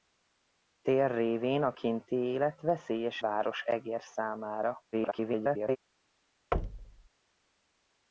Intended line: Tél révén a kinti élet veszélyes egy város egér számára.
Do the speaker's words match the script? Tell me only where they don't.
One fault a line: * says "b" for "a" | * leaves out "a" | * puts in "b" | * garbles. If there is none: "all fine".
* leaves out "egy"
* garbles